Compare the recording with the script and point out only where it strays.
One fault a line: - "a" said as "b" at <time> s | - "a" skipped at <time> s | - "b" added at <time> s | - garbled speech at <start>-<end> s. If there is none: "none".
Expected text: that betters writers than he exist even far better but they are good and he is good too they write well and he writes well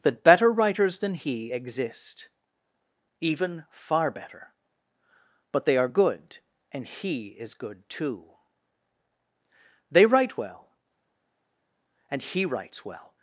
- "betters" said as "better" at 0.2 s